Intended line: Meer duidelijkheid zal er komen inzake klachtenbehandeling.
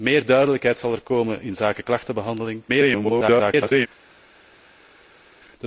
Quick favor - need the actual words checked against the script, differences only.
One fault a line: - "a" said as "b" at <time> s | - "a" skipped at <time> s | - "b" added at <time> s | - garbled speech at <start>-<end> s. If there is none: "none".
- garbled speech at 2.7-3.9 s